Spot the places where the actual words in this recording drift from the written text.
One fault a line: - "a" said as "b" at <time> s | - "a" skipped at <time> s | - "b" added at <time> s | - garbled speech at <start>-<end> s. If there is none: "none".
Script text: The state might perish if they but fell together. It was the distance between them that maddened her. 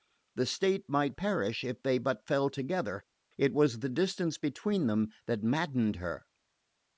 none